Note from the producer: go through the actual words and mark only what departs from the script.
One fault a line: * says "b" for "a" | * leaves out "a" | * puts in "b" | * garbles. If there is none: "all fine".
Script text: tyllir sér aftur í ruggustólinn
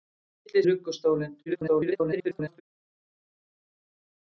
* leaves out "sér aftur"
* garbles